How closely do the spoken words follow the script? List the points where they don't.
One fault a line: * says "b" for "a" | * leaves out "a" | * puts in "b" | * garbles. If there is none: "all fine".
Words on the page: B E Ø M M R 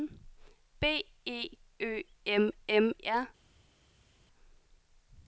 all fine